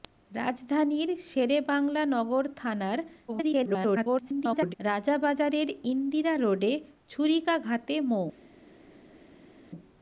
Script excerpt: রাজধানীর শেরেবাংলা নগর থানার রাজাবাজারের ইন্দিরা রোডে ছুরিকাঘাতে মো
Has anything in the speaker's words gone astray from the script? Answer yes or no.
yes